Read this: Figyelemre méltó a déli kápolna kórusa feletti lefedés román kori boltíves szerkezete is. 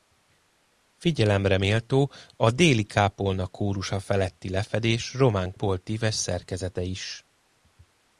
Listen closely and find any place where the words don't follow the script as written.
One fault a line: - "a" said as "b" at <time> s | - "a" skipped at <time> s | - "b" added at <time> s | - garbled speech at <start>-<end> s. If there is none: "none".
- "kori" skipped at 5.5 s